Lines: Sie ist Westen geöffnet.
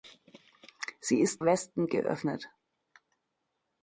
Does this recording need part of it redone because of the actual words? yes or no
no